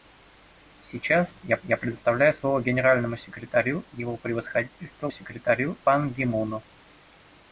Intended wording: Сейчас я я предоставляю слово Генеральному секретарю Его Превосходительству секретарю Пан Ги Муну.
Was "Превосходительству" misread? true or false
false